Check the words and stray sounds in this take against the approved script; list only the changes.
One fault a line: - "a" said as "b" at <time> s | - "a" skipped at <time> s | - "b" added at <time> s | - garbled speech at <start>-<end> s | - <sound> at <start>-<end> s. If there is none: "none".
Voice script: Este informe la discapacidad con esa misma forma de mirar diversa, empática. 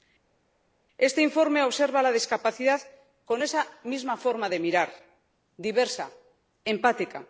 - "observa" added at 1.6 s